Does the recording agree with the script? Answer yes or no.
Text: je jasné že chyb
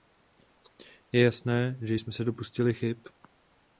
no